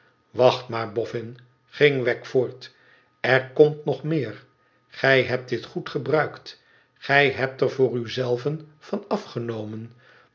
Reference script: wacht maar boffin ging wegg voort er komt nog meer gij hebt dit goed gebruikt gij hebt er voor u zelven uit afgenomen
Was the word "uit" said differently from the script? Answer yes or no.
yes